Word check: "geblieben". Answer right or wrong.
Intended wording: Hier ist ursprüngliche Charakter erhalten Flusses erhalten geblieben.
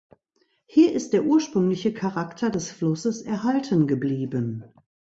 right